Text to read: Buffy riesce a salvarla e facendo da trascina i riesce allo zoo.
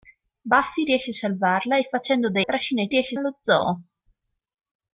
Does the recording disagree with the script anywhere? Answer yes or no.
no